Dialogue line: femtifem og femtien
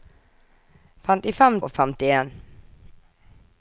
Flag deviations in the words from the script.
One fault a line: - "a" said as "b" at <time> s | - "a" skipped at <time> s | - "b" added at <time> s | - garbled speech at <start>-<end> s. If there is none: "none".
none